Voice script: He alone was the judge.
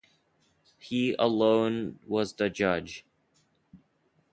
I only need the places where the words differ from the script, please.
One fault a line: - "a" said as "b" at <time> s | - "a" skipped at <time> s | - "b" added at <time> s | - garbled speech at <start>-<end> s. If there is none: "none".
none